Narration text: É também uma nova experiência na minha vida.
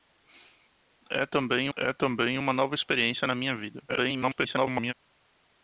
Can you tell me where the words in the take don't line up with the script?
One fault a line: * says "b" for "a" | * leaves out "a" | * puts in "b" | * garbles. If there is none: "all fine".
* puts in "é também"
* garbles